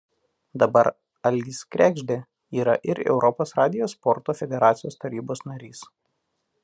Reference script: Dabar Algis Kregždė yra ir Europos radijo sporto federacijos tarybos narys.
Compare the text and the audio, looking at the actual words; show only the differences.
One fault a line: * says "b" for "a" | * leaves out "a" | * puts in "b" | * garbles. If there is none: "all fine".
all fine